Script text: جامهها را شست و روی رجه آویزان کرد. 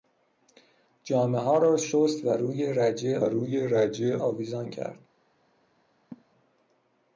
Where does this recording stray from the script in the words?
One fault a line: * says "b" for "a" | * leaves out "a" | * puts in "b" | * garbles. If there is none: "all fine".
* puts in "روی رجه"